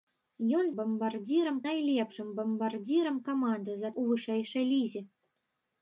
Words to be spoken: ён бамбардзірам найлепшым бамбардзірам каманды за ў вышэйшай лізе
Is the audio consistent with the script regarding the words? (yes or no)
yes